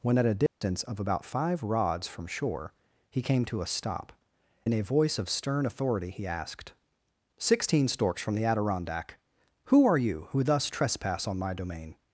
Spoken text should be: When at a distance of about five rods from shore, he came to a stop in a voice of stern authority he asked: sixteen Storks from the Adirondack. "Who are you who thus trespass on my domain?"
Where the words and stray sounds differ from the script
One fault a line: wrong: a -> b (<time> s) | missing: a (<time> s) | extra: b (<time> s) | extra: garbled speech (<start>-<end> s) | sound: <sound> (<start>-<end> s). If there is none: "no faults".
sound: dropout (0.5-0.6 s)